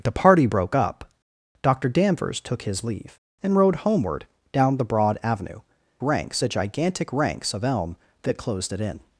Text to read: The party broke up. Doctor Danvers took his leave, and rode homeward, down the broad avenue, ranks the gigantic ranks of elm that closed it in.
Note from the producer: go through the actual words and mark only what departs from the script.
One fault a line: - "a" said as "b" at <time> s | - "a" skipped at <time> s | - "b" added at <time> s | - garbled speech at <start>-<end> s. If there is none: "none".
none